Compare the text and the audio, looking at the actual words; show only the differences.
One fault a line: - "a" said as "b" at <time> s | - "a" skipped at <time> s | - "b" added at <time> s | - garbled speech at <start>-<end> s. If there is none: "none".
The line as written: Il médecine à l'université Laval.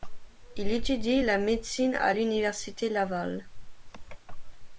- "étudie la" added at 0.7 s